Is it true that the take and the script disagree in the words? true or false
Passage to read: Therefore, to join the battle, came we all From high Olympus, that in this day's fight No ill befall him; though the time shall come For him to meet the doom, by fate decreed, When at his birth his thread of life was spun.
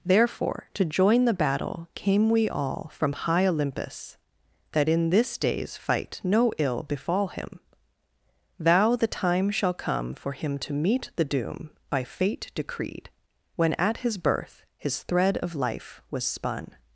true